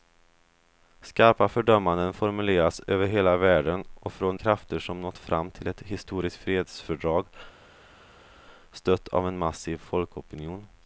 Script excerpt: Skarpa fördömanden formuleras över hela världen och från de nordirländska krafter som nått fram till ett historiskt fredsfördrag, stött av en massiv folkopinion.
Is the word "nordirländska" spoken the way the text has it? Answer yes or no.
no